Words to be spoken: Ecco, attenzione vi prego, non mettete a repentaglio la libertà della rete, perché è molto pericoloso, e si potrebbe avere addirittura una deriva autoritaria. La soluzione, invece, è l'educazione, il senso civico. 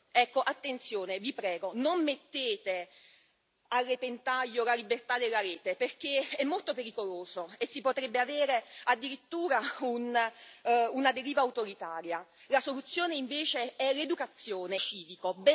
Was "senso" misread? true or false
true